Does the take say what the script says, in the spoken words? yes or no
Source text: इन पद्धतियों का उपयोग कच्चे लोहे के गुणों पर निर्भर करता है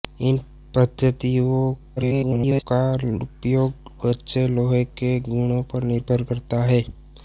no